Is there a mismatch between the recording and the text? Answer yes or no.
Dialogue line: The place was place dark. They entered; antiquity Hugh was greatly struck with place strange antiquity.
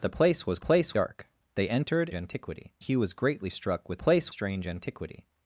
no